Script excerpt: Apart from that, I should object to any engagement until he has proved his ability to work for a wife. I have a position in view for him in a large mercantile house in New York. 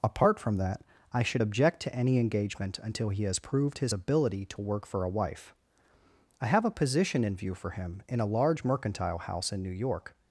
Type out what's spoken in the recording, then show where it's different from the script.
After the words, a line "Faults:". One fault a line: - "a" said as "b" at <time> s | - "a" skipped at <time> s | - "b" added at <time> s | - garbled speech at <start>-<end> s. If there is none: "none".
Apart from that, I should object to any engagement until he has proved his ability to work for a wife. I have a position in view for him in a large mercantile house in New York.
Faults:
none